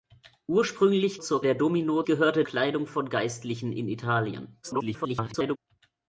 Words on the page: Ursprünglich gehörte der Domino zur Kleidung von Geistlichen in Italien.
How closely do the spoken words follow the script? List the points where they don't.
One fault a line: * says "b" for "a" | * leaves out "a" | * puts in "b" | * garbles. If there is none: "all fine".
* says "zur" for "gehörte"
* says "gehörte" for "zur"
* garbles